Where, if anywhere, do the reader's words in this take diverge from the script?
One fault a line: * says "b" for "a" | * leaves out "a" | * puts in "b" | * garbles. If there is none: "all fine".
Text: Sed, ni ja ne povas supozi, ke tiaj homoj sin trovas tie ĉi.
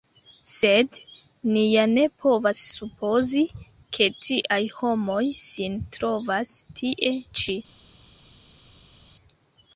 all fine